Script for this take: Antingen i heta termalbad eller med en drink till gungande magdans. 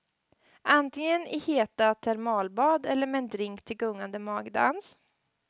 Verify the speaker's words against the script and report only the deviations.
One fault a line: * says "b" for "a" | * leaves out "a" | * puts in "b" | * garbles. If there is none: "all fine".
all fine